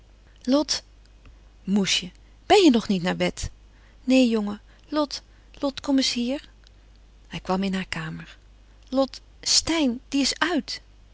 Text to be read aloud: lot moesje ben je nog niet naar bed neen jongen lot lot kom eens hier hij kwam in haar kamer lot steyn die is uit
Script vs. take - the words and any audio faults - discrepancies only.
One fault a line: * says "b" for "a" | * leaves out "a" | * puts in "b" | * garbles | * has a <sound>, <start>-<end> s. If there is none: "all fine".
all fine